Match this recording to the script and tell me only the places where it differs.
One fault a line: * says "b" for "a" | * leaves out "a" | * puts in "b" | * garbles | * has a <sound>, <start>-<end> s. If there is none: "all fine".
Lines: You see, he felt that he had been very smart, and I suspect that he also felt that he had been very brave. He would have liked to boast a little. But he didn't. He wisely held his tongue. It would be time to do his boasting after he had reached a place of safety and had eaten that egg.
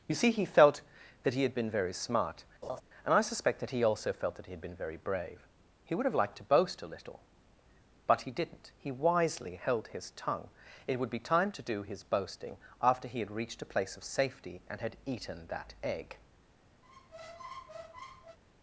* has a laugh, 2.6-2.8 s
* has a squeak, 16.8-18.4 s